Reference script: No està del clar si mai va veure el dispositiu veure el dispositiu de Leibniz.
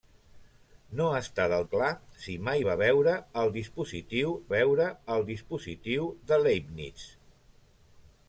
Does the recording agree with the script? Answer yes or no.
yes